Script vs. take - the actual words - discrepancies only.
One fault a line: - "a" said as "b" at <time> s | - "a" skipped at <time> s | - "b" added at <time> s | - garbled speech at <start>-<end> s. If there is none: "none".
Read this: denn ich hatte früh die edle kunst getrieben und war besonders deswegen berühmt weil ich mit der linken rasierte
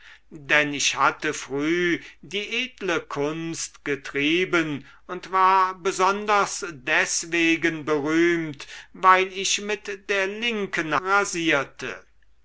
none